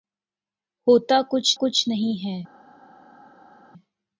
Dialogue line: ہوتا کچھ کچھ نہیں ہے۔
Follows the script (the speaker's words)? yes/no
yes